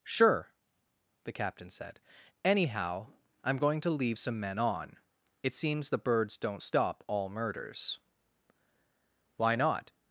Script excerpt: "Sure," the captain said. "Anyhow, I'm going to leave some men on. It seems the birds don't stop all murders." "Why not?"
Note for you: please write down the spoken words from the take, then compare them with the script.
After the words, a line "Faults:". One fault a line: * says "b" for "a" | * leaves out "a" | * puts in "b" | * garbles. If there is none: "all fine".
"Sure," the captain said. "Anyhow, I'm going to leave some men on. It seems the birds don't stop all murders." "Why not?"
Faults:
all fine